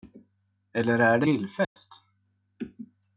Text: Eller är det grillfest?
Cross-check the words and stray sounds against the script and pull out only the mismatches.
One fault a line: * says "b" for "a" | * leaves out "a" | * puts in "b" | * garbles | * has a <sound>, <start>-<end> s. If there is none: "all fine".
* has a dropout, 1.6-1.8 s